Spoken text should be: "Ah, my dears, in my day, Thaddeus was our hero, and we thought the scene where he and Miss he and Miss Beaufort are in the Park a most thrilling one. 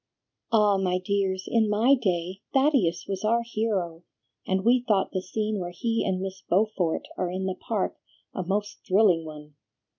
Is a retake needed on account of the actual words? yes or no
yes